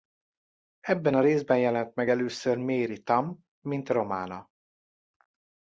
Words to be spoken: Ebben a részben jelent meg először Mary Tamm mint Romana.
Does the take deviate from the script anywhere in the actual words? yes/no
no